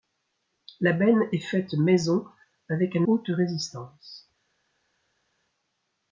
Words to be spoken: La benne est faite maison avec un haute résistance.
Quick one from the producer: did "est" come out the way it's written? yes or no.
yes